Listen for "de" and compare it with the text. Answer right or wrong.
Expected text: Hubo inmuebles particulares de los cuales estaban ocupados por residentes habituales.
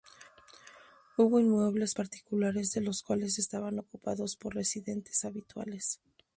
right